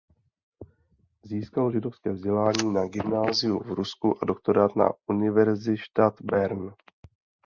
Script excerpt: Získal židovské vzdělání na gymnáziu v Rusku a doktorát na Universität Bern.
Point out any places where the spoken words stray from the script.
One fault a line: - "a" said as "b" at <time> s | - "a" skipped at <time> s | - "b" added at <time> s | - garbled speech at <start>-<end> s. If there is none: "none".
none